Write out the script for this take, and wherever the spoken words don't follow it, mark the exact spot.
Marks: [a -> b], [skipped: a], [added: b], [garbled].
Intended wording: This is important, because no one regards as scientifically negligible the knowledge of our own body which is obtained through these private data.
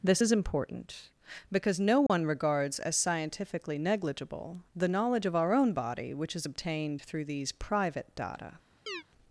This is important, because no one regards as scientifically negligible the knowledge of our own body which is obtained through these private data.